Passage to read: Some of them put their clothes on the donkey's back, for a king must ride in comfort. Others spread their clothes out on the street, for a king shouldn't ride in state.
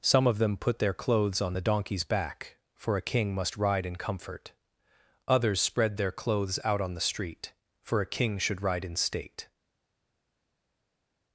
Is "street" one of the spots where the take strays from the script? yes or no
no